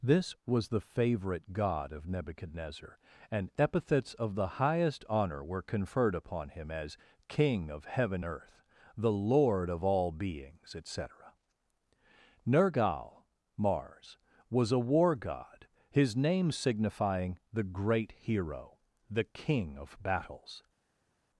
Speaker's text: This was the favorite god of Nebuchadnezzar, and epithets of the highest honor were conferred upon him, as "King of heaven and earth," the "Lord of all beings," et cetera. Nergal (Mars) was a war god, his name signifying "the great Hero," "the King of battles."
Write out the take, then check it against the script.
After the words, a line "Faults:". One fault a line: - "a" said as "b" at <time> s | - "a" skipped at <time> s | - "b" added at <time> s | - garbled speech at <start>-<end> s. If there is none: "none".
This was the favorite god of Nebuchadnezzar, and epithets of the highest honor were conferred upon him, as "King of heaven earth," the "Lord of all beings," et cetera. Nergal (Mars) was a war god, his name signifying "the great Hero," "the King of battles."
Faults:
- "and" skipped at 8.2 s